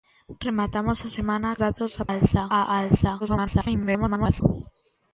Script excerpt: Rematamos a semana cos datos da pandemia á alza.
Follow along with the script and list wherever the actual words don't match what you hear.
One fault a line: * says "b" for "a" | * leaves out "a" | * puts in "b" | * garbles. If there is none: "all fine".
* leaves out "cos"
* says "alza" for "pandemia"
* garbles